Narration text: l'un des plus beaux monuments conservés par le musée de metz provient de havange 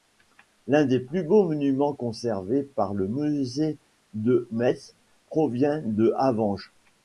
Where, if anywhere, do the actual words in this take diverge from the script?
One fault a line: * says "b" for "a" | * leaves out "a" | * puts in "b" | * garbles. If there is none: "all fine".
all fine